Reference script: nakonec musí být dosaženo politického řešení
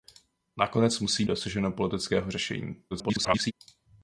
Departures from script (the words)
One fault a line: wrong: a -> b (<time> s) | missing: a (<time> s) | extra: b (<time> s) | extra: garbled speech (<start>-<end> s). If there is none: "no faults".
missing: být (1.2 s)
extra: garbled speech (2.9-3.5 s)